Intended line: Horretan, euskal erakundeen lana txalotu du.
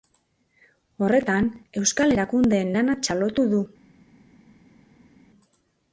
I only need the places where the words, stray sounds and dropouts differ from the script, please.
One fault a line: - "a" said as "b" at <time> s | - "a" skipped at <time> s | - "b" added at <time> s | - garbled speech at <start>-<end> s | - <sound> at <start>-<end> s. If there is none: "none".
none